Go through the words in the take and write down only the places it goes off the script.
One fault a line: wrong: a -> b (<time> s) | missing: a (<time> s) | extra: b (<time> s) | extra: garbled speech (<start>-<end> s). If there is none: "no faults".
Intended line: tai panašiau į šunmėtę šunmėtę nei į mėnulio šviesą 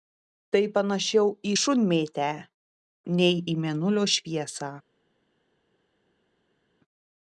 missing: šunmėtę (2.3 s)